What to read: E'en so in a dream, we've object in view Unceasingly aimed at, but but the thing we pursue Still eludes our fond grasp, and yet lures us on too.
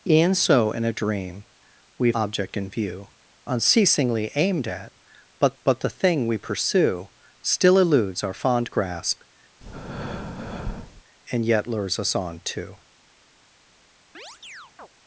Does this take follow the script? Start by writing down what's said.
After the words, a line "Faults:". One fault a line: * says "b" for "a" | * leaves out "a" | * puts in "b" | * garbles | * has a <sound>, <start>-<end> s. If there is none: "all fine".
E'en so in a dream, we've object in view Unceasingly aimed at, but but the thing we pursue Still eludes our fond grasp, and yet lures us on too.
Faults:
* has a breath, 9.6-11.0 s
* has a chirp, 14.1-14.9 s